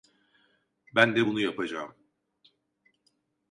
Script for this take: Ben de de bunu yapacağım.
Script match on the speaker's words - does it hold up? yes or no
no